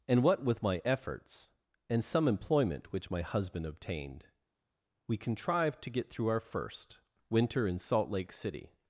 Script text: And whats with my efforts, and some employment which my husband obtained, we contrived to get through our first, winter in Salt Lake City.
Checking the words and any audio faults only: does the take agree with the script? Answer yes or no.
no